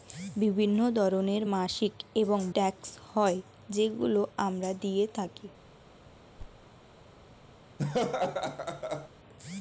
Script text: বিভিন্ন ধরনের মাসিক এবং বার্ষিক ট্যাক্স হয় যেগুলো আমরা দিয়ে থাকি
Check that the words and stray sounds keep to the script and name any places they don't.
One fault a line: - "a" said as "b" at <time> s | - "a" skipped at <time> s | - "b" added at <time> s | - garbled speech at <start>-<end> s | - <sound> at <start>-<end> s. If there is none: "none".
- "বার্ষিক" skipped at 2.4 s
- thud at 6.4-6.7 s
- laugh at 7.8-9.1 s